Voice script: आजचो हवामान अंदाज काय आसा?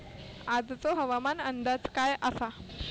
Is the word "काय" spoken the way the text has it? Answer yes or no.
yes